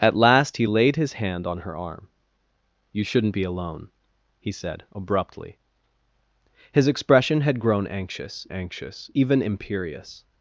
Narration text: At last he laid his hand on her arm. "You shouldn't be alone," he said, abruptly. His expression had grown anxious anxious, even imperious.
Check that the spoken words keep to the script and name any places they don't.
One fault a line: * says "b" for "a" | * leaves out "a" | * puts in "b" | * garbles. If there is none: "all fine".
all fine